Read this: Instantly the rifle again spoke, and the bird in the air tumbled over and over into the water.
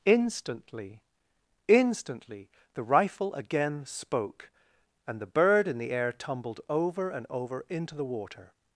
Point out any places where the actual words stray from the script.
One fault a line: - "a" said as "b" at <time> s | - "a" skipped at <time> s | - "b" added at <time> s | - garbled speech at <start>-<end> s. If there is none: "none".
- "instantly" added at 1.7 s